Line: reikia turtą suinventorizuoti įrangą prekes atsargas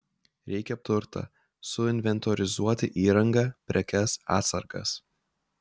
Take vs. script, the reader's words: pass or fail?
pass